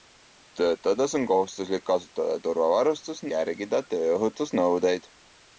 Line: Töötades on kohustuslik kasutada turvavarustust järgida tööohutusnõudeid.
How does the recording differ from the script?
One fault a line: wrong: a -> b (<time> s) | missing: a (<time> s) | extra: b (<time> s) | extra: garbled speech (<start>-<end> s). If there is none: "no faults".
no faults